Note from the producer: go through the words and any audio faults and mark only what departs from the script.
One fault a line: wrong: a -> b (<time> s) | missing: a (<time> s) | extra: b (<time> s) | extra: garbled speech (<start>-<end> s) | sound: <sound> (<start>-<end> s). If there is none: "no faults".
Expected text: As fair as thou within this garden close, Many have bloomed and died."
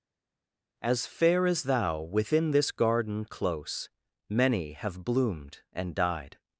no faults